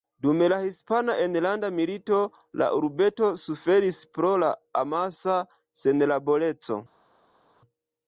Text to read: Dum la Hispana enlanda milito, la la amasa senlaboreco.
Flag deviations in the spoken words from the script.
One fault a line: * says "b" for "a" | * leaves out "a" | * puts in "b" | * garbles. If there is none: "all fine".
* puts in "urbeto suferis pro"